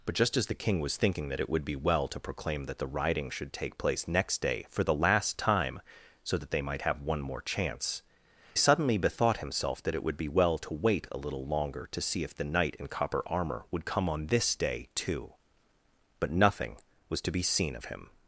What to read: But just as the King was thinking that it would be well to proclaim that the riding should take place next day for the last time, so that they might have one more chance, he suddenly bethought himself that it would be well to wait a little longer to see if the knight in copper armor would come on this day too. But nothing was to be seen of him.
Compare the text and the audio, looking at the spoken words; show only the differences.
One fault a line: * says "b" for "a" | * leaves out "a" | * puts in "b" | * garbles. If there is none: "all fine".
* leaves out "he"